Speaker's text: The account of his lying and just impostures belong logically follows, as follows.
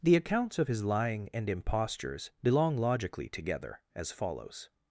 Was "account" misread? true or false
true